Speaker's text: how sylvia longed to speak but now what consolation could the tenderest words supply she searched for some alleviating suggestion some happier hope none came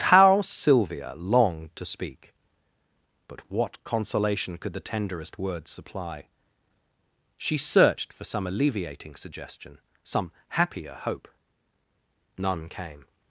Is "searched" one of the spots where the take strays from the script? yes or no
no